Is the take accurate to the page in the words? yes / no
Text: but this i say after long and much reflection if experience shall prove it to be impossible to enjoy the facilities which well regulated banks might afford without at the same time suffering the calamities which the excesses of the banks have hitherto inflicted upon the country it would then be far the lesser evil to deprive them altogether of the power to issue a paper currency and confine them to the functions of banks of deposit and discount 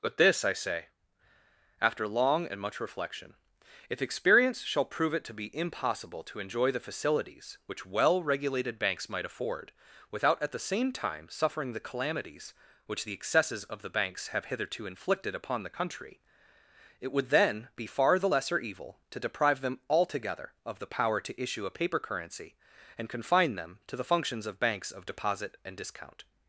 yes